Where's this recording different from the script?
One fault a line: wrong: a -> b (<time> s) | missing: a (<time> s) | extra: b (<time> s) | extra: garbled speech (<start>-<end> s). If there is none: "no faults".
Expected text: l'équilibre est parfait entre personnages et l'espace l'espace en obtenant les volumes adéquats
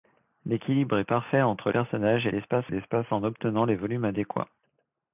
no faults